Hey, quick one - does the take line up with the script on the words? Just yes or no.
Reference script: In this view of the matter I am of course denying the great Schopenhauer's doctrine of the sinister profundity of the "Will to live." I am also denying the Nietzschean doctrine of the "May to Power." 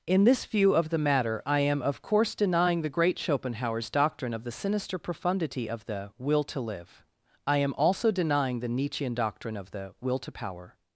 no